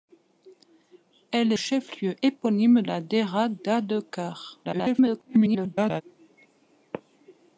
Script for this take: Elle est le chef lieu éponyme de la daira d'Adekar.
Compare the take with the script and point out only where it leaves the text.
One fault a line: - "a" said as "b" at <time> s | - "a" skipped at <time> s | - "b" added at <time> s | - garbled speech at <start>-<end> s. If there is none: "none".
- "est le" skipped at 1.5 s
- "de" skipped at 2.8 s
- garbled speech at 4.6-6.0 s